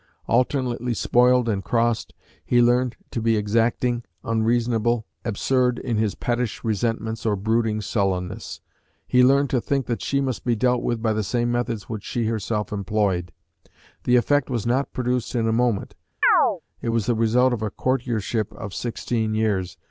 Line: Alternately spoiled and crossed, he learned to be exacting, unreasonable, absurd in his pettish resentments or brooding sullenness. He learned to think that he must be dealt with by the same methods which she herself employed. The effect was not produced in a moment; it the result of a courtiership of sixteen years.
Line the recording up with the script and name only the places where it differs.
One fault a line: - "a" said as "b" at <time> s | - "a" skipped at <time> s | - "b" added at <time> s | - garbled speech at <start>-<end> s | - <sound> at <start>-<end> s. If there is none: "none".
- "he" said as "she" at 10.0 s
- chirp at 16.2-16.6 s
- "was" added at 16.9 s